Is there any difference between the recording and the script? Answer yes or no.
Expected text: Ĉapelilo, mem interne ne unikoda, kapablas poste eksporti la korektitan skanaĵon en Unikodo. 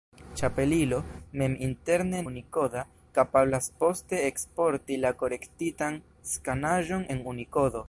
yes